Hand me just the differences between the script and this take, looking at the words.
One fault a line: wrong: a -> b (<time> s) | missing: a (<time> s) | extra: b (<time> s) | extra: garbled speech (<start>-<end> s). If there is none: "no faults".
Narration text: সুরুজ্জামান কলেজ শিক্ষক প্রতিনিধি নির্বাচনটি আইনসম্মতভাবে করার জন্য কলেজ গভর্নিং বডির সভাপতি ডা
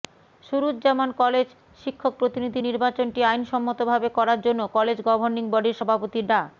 no faults